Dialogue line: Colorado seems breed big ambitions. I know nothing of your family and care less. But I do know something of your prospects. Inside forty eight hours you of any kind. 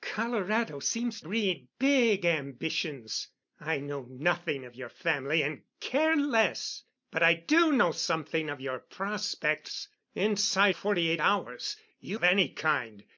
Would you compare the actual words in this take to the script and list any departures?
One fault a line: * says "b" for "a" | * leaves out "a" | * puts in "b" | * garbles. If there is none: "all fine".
all fine